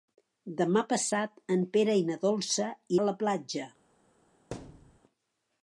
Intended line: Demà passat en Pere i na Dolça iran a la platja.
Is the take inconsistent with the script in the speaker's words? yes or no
yes